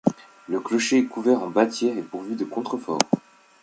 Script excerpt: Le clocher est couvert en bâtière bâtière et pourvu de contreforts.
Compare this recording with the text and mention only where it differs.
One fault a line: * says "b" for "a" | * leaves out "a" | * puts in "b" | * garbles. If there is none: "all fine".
* leaves out "bâtière"